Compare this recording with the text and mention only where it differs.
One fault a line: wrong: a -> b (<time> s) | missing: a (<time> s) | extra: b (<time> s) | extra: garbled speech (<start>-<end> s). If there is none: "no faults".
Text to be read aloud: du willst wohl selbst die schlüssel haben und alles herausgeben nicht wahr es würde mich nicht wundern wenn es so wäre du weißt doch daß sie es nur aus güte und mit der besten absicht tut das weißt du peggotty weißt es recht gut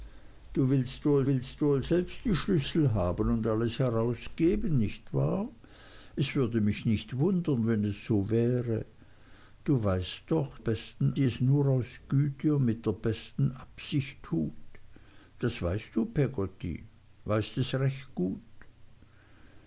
extra: willst wohl (1.3 s)
wrong: daß -> besten (10.6 s)